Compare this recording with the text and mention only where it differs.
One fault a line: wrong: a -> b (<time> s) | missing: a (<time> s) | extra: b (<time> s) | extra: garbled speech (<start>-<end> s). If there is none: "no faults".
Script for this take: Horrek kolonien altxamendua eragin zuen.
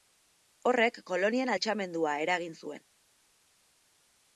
no faults